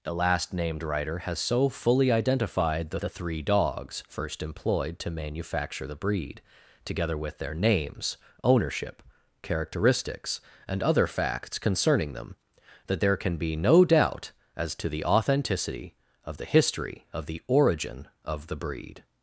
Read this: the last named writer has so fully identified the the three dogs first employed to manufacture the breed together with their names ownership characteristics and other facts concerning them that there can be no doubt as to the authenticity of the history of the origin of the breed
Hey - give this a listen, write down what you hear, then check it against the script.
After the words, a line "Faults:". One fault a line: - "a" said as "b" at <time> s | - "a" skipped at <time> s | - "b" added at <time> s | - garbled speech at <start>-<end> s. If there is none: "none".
the last named writer has so fully identified the the three dogs first employed to manufacture the breed together with their names ownership characteristics and other facts concerning them that there can be no doubt as to the authenticity of the history of the origin of the breed
Faults:
none